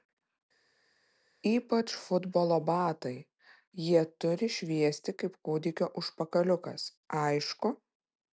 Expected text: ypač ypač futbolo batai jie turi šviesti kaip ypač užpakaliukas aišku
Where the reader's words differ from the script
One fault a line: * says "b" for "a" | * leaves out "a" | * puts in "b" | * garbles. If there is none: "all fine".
* leaves out "ypač"
* says "kūdikio" for "ypač"